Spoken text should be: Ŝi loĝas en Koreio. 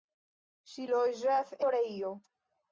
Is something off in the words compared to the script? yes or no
yes